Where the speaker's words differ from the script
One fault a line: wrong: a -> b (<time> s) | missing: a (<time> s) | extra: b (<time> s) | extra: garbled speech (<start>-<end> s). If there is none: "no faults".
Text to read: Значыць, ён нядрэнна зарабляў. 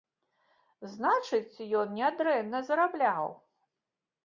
no faults